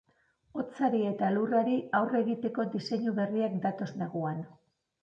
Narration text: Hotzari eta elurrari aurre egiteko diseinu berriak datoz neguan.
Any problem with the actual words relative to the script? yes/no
no